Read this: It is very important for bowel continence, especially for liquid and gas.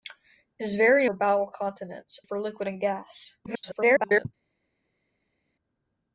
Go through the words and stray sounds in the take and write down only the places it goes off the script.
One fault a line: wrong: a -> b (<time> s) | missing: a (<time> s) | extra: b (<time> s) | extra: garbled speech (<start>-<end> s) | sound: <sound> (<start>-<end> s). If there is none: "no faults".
missing: important (1.1 s)
missing: especially (2.2 s)
extra: garbled speech (3.5-4.3 s)